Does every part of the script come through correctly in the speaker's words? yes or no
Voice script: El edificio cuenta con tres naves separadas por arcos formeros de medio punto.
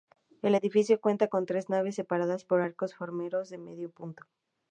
yes